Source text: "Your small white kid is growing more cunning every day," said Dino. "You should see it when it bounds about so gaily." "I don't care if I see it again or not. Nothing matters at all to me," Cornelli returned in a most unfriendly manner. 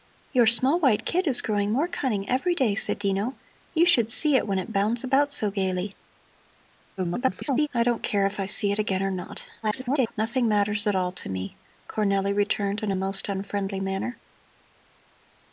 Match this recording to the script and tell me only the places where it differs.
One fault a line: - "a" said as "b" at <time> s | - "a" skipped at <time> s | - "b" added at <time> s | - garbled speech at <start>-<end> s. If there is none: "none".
- garbled speech at 7.0-7.7 s
- garbled speech at 9.6-10.1 s